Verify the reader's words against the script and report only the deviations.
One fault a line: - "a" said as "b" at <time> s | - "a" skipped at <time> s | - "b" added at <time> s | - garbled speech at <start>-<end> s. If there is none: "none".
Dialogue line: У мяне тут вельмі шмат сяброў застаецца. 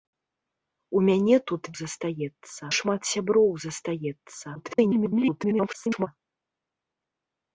- "вельмі" said as "застаецца" at 1.8 s
- garbled speech at 4.6-6.1 s